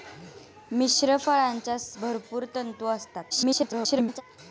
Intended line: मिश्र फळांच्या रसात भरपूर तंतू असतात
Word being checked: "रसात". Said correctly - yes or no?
no